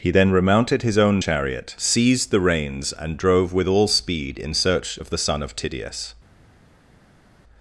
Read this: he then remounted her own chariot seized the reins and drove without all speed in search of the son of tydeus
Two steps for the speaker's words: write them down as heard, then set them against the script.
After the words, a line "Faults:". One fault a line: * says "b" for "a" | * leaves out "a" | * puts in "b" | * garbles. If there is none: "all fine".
he then remounted his own chariot seized the reins and drove with all speed in search of the son of tydeus
Faults:
* says "his" for "her"
* says "with" for "without"